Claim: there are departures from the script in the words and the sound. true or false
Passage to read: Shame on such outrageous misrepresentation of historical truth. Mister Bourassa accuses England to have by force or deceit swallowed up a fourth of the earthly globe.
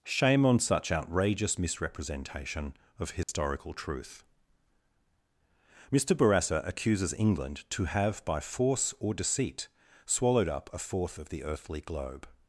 true